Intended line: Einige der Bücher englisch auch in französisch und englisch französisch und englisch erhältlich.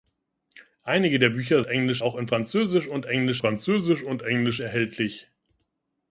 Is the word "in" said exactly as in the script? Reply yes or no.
yes